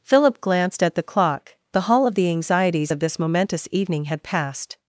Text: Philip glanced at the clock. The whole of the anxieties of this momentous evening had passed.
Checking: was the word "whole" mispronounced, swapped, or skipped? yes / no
yes